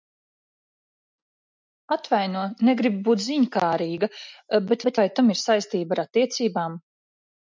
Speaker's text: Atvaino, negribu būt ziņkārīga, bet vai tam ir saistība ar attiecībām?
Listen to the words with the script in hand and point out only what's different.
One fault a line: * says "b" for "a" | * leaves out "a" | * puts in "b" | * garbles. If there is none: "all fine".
* puts in "bet"